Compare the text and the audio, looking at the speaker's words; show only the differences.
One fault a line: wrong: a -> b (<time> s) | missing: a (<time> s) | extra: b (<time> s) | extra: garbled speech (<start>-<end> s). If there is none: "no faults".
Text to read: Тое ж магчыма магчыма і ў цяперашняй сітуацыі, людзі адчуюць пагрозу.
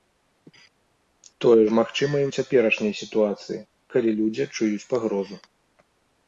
missing: магчыма (2.1 s)
extra: калі (4.0 s)